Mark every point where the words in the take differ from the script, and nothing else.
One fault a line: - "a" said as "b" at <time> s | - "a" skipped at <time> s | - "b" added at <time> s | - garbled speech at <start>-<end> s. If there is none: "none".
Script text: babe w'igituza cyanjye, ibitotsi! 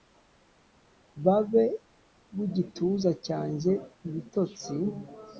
none